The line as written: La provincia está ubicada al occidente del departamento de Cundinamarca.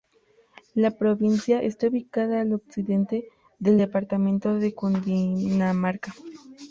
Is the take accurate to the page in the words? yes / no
yes